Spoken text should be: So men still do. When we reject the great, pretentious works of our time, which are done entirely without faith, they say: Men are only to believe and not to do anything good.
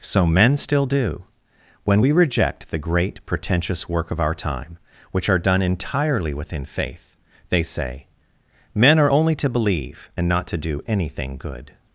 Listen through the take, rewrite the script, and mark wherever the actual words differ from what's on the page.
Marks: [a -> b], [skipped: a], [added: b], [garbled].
So men still do. When we reject the great, pretentious [works -> work] of our time, which are done entirely [without -> within] faith, they say: Men are only to believe and not to do anything good.